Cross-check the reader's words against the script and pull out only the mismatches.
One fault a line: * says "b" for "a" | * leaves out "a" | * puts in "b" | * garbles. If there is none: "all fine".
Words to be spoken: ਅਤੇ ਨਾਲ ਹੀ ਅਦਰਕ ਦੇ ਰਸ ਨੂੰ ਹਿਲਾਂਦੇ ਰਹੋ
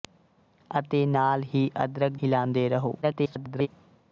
* leaves out "ਦੇ ਰਸ ਨੂੰ"
* garbles